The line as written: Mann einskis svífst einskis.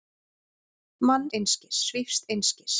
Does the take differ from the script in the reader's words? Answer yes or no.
no